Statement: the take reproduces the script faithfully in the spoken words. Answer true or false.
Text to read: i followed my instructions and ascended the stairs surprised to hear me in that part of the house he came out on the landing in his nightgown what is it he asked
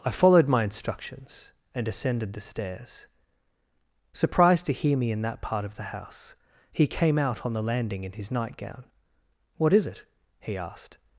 true